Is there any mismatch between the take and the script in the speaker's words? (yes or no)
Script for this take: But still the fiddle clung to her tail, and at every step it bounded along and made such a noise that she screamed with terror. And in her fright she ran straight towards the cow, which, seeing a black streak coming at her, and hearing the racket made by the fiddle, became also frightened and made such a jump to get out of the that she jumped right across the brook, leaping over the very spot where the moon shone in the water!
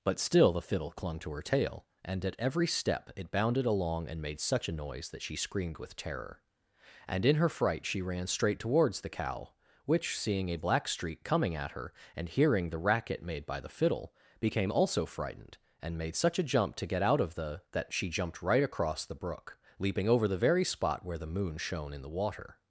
no